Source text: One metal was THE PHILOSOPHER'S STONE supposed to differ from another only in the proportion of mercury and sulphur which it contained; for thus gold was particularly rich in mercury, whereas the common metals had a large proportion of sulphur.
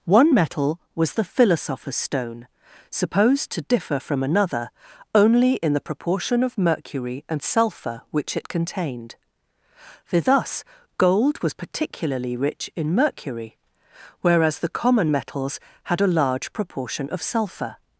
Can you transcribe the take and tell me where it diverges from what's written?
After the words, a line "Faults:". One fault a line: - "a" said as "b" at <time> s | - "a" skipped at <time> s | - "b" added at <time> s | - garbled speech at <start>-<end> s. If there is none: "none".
One metal was THE PHILOSOPHER'S STONE supposed to differ from another only in the proportion of mercury and sulphur which it contained; for thus gold was particularly rich in mercury, whereas the common metals had a large proportion of sulphur.
Faults:
none